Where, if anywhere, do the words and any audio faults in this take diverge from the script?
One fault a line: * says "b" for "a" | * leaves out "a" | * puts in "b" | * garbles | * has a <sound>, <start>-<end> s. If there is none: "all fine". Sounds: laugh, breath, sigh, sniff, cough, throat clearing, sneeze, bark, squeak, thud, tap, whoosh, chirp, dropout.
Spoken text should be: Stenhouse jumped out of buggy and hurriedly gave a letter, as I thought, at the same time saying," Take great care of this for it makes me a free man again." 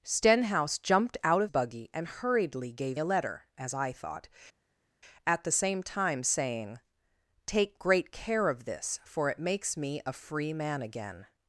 all fine